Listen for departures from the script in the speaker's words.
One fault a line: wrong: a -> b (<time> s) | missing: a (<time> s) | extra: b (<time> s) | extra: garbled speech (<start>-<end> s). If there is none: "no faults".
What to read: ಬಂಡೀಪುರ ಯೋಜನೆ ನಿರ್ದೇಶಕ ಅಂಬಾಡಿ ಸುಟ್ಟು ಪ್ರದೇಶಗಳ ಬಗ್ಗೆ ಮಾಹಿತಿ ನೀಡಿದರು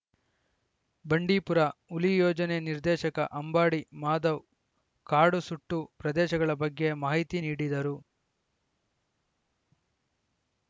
extra: ಹುಲಿ (1.9 s)
extra: ಮಾಧವ್ ಕಾಡು (4.0 s)